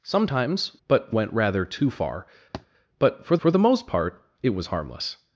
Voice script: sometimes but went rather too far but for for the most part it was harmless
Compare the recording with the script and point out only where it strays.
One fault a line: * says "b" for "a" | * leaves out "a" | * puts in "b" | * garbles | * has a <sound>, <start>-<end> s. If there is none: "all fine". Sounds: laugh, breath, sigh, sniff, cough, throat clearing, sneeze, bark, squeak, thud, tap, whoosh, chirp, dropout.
* has a thud, 2.5-2.7 s